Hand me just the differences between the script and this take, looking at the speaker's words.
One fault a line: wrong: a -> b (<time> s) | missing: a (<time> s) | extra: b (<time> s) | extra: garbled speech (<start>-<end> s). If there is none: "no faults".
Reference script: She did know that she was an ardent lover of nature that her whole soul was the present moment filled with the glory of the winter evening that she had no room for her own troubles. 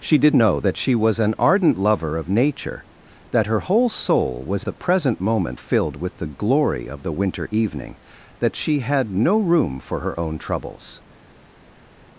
no faults